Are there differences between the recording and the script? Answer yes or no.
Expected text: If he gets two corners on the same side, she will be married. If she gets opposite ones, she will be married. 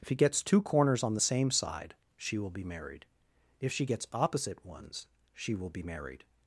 no